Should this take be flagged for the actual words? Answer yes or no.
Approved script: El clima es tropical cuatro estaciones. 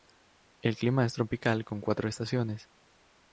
yes